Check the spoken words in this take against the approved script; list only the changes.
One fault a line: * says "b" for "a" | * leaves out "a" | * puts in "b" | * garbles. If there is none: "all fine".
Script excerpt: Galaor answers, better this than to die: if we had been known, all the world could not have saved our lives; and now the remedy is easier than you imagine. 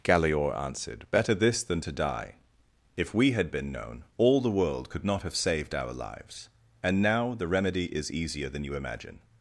* says "answered" for "answers"